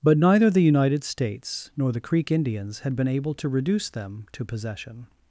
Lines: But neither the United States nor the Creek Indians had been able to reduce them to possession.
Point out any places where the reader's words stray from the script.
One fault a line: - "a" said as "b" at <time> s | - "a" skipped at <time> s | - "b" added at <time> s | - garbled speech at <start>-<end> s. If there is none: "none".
none